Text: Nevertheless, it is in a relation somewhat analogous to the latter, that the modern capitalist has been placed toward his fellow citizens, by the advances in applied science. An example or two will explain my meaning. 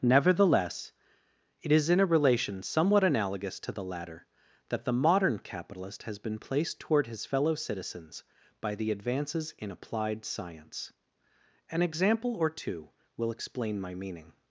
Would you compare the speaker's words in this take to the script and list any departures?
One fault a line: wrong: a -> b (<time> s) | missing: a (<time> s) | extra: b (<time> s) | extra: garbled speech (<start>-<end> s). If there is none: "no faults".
no faults